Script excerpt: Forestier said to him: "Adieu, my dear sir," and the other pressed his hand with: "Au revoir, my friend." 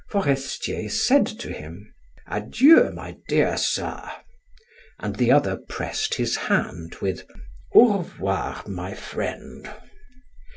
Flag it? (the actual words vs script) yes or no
no